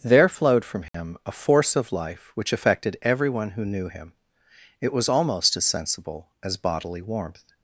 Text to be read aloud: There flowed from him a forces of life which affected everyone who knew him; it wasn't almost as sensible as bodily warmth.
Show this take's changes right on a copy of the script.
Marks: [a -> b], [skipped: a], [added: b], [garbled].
There flowed from him a [forces -> force] of life which affected everyone who knew him; it [wasn't -> was] almost as sensible as bodily warmth.